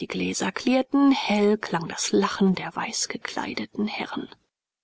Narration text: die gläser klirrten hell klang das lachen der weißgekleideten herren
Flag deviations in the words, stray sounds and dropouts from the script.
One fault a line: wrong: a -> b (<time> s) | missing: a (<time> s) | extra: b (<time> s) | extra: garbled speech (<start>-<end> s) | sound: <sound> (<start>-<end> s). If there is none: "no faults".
no faults